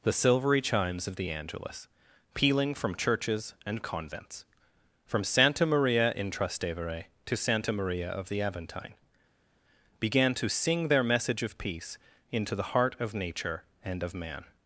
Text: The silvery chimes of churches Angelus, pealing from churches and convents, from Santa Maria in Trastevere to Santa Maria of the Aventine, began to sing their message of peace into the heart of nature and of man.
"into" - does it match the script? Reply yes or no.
yes